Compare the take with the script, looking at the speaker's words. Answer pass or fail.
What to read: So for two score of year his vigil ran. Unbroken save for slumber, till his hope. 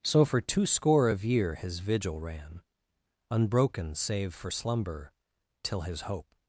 pass